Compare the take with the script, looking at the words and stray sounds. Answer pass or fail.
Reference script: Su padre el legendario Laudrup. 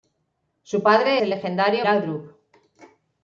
pass